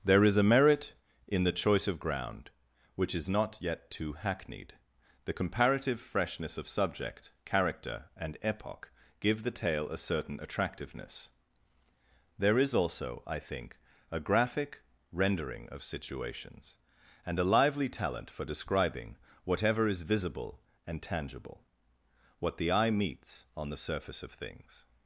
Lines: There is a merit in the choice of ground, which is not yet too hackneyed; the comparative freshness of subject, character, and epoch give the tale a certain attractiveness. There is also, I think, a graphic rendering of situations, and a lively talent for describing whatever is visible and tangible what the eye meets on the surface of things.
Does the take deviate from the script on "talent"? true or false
false